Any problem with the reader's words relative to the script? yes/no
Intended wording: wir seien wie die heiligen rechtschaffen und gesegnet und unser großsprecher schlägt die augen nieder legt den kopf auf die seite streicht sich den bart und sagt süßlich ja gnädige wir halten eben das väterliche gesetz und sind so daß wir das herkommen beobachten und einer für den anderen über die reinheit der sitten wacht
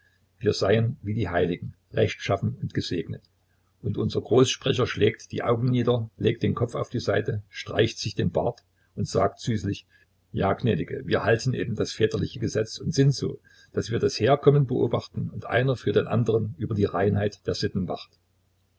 no